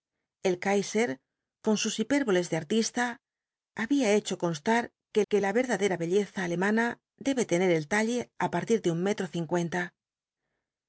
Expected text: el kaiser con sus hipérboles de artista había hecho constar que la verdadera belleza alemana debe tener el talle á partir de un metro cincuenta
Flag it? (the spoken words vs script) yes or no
yes